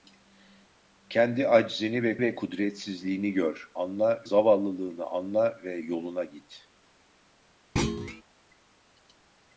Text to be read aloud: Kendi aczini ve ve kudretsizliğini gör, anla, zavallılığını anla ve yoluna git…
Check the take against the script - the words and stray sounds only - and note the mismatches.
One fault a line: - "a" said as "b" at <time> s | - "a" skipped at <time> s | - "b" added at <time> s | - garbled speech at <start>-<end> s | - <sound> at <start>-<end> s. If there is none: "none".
- thud at 7.8-8.2 s